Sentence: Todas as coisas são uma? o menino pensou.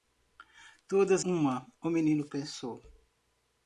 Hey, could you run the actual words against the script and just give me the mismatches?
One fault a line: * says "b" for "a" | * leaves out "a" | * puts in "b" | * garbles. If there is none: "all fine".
* leaves out "as coisas são"